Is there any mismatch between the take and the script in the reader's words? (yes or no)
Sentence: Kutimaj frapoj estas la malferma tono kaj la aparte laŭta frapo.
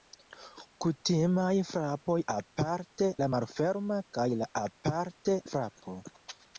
yes